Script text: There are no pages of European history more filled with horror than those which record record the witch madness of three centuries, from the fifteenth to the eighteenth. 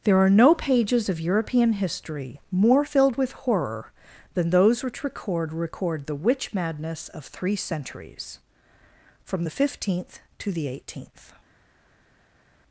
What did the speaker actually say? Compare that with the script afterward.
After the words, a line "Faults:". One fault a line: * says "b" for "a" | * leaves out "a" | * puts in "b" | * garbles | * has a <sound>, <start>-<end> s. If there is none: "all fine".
There are no pages of European history more filled with horror than those which record record the witch madness of three centuries, from the fifteenth to the eighteenth.
Faults:
all fine